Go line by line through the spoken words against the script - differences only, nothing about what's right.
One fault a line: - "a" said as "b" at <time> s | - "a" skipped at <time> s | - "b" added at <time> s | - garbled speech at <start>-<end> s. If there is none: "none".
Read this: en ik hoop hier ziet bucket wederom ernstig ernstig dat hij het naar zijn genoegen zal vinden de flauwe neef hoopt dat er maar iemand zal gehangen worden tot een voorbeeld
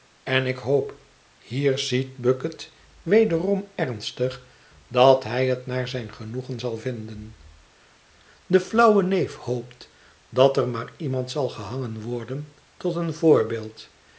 - "ernstig" skipped at 4.5 s